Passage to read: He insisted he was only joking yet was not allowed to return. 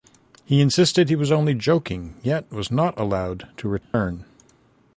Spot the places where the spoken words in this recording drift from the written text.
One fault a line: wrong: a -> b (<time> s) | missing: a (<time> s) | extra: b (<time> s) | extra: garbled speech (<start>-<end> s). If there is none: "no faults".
no faults